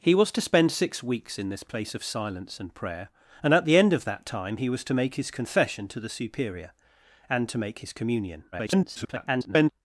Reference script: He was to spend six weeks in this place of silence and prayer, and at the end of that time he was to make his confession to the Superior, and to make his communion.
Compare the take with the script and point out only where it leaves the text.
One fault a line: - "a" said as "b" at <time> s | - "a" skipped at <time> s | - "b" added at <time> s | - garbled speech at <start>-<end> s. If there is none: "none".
- garbled speech at 8.5-9.7 s